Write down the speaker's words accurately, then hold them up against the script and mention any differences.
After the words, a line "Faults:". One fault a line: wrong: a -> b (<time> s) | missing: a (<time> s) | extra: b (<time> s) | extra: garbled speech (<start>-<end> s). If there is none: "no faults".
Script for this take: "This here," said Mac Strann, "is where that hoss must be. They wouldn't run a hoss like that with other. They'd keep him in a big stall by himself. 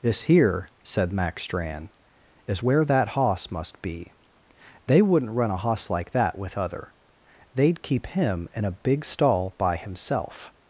"This here," said Mac Strann, "is where that hoss must be. They wouldn't run a hoss like that with other. They'd keep him in a big stall by himself.
Faults:
no faults